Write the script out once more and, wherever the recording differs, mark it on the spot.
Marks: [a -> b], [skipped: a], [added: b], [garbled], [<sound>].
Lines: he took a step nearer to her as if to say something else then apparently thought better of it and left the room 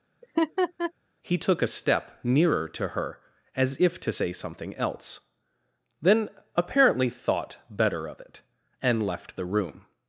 [laugh] he took a step nearer to her as if to say something else then apparently thought better of it and left the room